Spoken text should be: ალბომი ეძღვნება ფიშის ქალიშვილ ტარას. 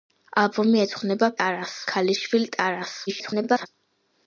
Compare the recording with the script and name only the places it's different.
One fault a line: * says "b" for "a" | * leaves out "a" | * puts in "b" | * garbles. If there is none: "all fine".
* says "ტარას" for "ფიშის"
* garbles